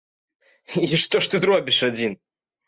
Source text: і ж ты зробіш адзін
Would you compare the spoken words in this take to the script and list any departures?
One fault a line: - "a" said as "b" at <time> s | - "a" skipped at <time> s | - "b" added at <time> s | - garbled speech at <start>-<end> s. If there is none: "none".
- "што" added at 1.1 s